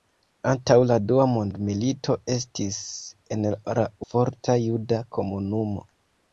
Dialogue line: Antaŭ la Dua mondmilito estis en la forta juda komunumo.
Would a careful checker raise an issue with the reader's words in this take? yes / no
no